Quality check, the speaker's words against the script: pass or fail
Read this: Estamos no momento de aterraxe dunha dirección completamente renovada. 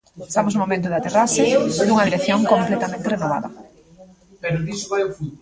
pass